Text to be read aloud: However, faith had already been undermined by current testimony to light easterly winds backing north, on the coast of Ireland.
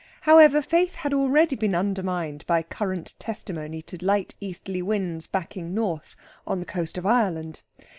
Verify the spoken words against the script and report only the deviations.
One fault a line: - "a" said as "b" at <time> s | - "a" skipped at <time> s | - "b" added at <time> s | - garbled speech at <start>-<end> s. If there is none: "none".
none